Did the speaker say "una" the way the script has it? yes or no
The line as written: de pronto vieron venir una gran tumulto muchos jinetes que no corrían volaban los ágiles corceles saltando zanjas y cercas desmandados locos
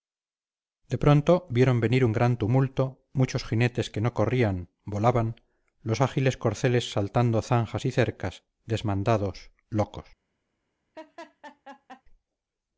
no